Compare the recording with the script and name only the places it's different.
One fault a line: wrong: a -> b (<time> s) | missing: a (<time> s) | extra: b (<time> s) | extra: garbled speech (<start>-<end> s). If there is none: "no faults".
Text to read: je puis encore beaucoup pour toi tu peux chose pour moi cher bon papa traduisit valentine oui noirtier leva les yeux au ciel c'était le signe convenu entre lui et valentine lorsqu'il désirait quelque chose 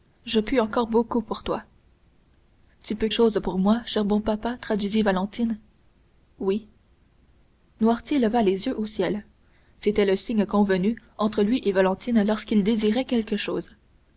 no faults